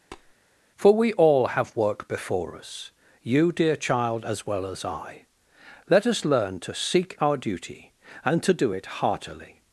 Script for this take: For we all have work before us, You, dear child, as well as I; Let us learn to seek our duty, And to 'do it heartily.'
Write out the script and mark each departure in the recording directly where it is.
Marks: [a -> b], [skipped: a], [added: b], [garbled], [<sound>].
[tap] For we all have work before us, You, dear child, as well as I; Let us learn to seek our duty, And to 'do it heartily.'